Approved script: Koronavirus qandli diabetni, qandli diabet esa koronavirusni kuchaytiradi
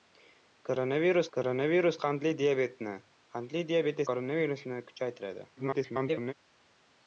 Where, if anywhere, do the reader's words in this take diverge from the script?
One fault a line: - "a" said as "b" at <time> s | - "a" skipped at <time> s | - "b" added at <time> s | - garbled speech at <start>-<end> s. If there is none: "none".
- "koronavirus" added at 1.4 s
- "esa" skipped at 4.1 s
- garbled speech at 5.6-6.3 s